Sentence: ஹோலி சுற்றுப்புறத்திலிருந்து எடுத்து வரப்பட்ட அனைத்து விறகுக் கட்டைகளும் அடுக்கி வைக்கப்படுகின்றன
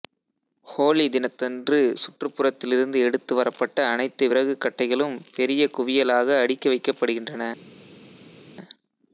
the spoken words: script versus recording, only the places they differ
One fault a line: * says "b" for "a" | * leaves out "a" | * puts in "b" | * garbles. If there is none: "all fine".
* puts in "தினத்தன்று"
* puts in "பெரிய குவியலாக"